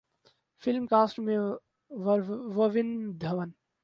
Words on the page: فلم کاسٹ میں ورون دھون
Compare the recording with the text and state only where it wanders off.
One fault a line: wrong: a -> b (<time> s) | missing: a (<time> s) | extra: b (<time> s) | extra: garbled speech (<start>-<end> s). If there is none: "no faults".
no faults